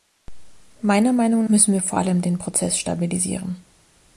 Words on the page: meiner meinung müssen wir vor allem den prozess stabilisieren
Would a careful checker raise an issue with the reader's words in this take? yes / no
no